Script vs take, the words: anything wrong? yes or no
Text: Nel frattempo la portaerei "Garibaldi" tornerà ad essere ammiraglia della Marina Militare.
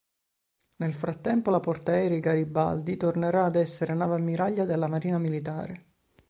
yes